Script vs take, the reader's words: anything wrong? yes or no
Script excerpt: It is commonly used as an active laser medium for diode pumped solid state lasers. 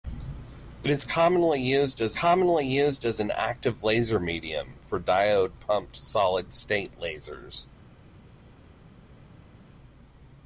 yes